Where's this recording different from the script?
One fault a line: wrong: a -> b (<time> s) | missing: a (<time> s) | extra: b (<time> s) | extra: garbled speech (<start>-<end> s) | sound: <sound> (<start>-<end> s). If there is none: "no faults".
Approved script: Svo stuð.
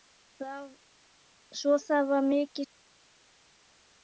extra: það var mikið (1.9 s)